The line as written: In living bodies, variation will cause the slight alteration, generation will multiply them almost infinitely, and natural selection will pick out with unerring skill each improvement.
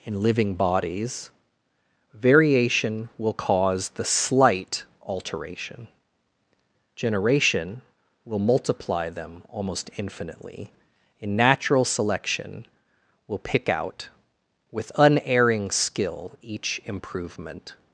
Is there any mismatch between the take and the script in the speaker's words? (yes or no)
yes